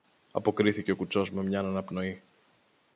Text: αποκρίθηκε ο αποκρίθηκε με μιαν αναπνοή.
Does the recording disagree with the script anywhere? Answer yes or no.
yes